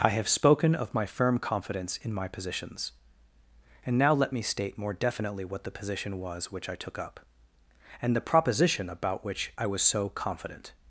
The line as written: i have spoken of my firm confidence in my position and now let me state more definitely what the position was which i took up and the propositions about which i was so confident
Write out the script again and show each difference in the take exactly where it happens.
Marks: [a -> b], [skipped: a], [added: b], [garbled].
i have spoken of my firm confidence in my [position -> positions] and now let me state more definitely what the position was which i took up and the [propositions -> proposition] about which i was so confident